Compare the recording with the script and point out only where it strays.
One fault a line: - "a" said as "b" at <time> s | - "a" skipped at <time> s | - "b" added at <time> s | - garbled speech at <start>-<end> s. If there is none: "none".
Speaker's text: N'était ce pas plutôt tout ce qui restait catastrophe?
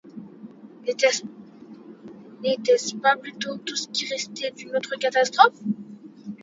- "d'une autre" added at 4.5 s